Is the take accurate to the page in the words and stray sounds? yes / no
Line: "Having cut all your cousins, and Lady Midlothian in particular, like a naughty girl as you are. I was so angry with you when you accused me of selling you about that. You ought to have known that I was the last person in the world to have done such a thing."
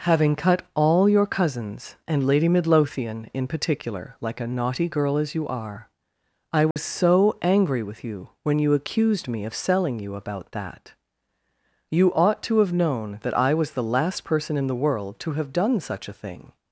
no